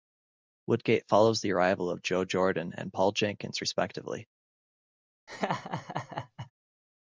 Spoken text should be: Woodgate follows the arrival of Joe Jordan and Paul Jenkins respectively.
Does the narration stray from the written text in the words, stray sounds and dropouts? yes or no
yes